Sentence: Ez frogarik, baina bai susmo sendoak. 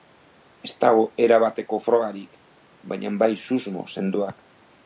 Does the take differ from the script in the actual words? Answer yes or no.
yes